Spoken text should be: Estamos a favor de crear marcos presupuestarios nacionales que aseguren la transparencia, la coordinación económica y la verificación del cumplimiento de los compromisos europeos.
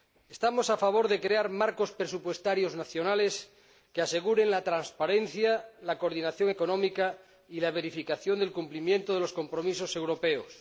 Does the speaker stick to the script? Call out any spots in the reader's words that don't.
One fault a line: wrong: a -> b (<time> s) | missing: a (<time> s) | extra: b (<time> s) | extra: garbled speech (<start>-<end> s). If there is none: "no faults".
no faults